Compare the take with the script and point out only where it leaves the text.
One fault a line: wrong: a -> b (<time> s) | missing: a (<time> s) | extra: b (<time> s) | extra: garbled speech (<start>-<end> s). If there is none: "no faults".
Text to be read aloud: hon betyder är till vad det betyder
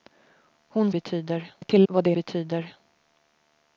no faults